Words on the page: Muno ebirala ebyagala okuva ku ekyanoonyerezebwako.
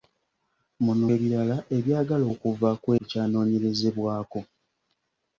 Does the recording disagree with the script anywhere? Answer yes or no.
no